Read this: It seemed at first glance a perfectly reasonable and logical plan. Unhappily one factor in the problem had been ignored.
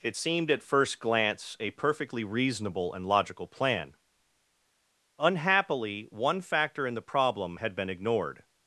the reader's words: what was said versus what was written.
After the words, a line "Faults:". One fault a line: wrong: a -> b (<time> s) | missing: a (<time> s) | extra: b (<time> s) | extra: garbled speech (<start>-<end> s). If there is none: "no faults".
It seemed at first glance a perfectly reasonable and logical plan. Unhappily one factor in the problem had been ignored.
Faults:
no faults